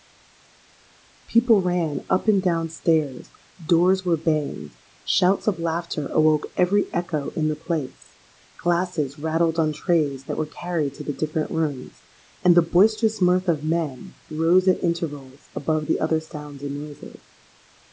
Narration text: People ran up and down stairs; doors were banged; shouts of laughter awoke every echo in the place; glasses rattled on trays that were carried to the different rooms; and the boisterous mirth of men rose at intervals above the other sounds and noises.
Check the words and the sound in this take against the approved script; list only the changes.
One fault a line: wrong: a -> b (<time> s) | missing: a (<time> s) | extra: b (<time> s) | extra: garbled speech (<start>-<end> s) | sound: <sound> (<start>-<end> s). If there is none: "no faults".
no faults